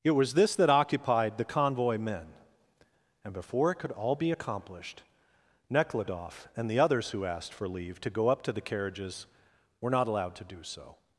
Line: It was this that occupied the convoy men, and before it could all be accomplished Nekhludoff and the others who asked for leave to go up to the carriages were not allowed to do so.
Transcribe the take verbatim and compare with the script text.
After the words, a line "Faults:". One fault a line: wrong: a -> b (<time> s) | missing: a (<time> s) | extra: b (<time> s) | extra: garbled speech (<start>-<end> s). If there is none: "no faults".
It was this that occupied the convoy men, and before it could all be accomplished Nekhludoff and the others who asked for leave to go up to the carriages were not allowed to do so.
Faults:
no faults